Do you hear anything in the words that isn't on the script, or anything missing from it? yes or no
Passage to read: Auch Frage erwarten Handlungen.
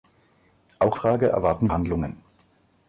no